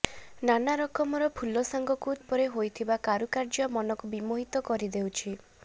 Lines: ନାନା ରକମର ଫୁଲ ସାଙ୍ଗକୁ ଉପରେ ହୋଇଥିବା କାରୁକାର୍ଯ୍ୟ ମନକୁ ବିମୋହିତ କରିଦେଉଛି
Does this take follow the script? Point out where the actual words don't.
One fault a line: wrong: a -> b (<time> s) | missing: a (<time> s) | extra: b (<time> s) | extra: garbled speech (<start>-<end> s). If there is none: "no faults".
no faults